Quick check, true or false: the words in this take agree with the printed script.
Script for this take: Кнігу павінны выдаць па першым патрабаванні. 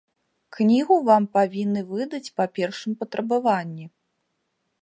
false